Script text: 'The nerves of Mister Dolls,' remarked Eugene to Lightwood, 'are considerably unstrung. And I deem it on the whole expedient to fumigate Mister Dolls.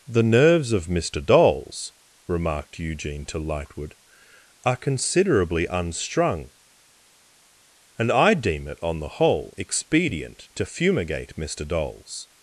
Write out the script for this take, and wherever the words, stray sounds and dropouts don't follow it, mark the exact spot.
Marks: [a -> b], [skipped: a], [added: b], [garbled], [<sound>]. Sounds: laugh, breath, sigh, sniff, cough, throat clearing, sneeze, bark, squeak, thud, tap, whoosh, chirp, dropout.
'The nerves of Mister Dolls,' remarked Eugene to Lightwood, 'are considerably unstrung. And I deem it on the whole expedient to fumigate Mister Dolls.